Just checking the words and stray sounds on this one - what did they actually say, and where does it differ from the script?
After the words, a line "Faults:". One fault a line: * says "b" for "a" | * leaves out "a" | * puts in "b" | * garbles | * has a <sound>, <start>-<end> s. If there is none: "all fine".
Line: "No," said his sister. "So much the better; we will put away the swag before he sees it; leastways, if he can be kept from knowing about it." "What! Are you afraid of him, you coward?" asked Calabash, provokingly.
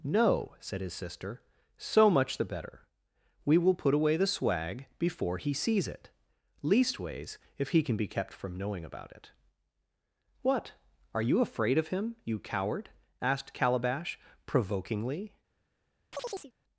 "No," said his sister. "So much the better; we will put away the swag before he sees it; leastways, if he can be kept from knowing about it." "What! Are you afraid of him, you coward?" asked Calabash, provokingly.
Faults:
* has a chirp, 16.1-16.5 s